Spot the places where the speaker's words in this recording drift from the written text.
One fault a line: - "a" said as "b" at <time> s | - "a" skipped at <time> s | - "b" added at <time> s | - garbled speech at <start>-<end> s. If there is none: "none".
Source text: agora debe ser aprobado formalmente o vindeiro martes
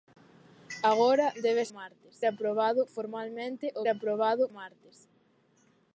- "ser" said as "martes" at 1.8 s
- "vindeiro" said as "aprobado" at 3.9 s